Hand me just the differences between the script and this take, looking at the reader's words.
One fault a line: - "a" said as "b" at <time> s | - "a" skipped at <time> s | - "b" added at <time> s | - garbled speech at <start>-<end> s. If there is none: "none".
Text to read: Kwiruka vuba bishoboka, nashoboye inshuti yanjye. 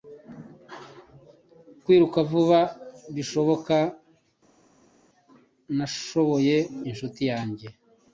none